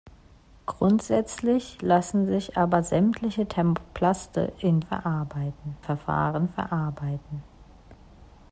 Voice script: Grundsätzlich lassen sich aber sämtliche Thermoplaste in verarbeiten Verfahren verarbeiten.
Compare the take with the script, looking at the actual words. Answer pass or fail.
pass